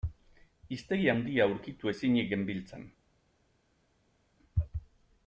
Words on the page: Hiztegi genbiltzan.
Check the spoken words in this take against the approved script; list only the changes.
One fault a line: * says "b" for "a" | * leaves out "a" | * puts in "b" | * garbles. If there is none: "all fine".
* puts in "handia aurkitu ezinik"